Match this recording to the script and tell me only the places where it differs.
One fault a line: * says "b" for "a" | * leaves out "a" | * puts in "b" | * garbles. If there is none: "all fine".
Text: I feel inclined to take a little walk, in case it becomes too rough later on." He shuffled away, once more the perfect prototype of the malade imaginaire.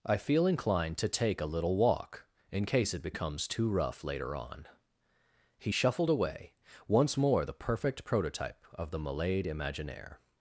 all fine